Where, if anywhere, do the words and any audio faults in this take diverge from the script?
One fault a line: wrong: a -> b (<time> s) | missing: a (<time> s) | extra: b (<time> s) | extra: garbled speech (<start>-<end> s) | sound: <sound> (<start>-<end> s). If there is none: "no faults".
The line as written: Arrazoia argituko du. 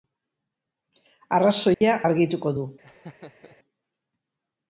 sound: dropout (1.7-1.8 s)
sound: laugh (2.8-3.6 s)